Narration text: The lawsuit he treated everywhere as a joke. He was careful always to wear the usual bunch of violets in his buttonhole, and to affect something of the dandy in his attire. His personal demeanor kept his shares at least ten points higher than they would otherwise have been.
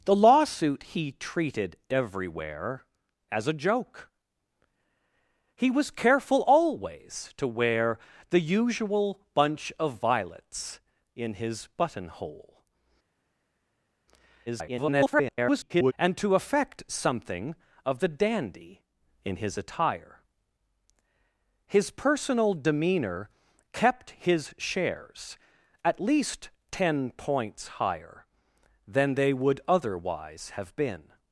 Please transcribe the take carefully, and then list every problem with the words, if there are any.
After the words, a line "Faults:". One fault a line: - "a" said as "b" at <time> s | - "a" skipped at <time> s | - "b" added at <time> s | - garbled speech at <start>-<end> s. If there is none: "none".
The lawsuit he treated everywhere as a joke. He was careful always to wear the usual bunch of violets in his buttonhole, [garbled] and to affect something of the dandy in his attire. His personal demeanor kept his shares at least ten points higher than they would otherwise have been.
Faults:
- garbled speech at 14.5-15.9 s